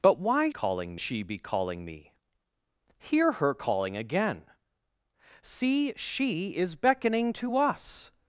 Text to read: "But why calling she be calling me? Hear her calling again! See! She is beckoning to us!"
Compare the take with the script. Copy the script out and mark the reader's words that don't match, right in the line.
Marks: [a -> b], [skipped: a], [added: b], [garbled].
"But why calling she be calling me? Hear her calling again! See! She is beckoning to us!"